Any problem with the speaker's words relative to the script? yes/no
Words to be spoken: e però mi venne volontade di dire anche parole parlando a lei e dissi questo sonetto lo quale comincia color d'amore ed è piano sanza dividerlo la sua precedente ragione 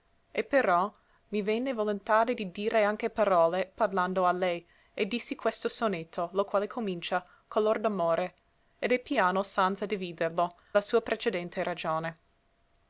no